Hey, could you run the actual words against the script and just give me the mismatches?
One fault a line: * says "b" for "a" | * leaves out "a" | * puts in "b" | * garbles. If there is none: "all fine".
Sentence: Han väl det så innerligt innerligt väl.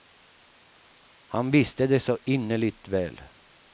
* says "visste" for "väl"
* leaves out "innerligt"